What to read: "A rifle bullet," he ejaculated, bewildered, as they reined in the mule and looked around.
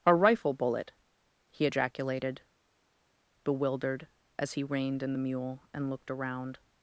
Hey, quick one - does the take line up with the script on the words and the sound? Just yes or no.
no